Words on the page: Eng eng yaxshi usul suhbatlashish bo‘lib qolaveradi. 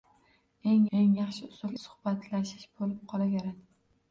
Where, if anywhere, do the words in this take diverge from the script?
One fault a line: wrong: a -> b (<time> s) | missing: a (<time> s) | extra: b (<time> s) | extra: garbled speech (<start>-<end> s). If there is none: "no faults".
no faults